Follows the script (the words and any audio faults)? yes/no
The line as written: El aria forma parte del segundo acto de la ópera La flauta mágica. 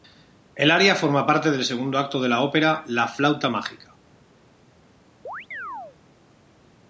no